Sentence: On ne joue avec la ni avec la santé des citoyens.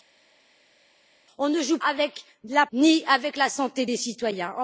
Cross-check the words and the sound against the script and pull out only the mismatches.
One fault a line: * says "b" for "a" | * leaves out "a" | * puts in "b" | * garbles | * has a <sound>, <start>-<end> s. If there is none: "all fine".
all fine